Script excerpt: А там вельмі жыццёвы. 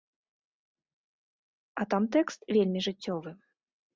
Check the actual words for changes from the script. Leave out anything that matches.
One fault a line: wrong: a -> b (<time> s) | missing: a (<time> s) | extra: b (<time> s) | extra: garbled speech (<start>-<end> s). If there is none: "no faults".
extra: тэкст (2.1 s)